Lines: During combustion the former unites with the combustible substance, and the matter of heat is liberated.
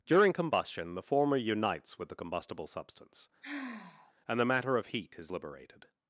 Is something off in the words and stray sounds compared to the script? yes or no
yes